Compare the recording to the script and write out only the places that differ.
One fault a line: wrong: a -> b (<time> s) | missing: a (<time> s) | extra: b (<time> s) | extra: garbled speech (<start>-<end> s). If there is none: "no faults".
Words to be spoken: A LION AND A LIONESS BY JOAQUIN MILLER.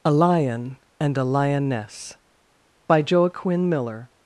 no faults